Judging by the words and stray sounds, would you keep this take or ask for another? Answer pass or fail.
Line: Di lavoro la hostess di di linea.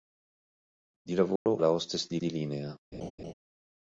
fail